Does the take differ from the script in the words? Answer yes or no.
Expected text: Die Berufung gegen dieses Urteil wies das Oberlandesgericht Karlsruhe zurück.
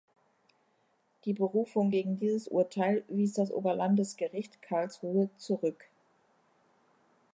no